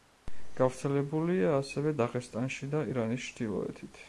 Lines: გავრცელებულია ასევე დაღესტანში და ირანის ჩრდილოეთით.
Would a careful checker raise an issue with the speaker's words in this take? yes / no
no